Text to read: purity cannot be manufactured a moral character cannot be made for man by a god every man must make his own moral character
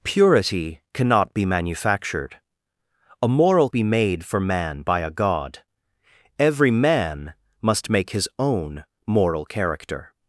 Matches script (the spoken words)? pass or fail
fail